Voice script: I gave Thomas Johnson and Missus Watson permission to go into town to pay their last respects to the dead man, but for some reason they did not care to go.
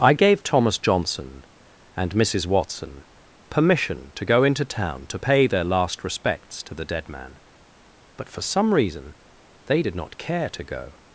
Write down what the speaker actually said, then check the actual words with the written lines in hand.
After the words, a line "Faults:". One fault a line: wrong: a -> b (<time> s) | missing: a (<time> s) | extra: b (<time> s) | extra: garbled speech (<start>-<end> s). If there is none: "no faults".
I gave Thomas Johnson and Missus Watson permission to go into town to pay their last respects to the dead man, but for some reason they did not care to go.
Faults:
no faults